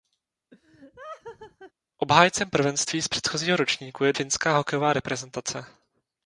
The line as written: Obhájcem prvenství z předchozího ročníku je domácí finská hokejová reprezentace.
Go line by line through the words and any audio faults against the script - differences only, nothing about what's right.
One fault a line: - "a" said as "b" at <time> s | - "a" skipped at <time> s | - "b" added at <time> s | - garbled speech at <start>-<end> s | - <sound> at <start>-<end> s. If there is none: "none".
- laugh at 0.5-1.7 s
- "domácí" skipped at 4.1 s